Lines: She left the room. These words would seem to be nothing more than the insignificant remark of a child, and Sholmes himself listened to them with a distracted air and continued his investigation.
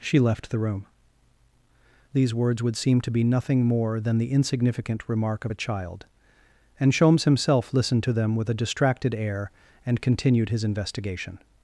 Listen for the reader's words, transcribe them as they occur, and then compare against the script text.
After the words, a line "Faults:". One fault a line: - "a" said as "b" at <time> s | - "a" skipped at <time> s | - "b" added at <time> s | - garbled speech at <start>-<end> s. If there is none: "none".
She left the room. These words would seem to be nothing more than the insignificant remark of a child, and Sholmes himself listened to them with a distracted air and continued his investigation.
Faults:
none